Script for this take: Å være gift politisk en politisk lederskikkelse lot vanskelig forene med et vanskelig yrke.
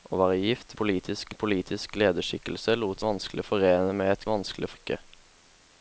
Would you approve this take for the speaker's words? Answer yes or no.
yes